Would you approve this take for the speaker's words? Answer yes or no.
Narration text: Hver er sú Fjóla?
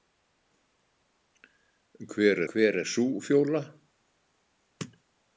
no